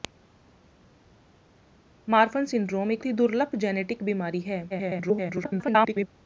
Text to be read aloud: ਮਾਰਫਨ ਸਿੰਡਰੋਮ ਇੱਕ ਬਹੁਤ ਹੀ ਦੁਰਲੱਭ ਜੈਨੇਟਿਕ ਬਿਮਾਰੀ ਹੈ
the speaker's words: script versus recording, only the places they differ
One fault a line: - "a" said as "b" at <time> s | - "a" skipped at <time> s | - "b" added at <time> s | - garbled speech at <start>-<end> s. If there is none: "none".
- "ਬਹੁਤ" skipped at 3.0 s
- garbled speech at 4.7-6.1 s